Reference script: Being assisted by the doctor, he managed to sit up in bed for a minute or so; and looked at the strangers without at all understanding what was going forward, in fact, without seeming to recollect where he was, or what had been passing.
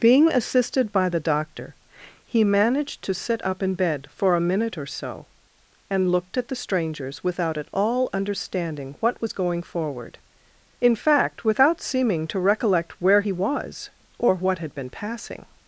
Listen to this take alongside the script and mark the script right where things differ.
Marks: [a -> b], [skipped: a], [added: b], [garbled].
Being assisted by the doctor, he managed to sit up in bed for a minute or so; and looked at the strangers without at all understanding what was going forward, in fact, without seeming to recollect where he was, or what had been passing.